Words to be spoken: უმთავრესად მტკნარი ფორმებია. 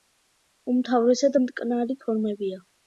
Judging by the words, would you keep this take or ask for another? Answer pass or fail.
pass